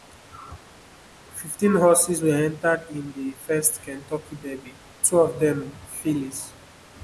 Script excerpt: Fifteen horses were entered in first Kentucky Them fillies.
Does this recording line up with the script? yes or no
no